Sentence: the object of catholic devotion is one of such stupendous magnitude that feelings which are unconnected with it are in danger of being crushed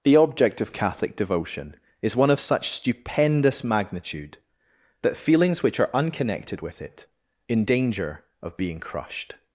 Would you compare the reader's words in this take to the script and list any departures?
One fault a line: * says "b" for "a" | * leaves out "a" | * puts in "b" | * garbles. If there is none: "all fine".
* leaves out "are"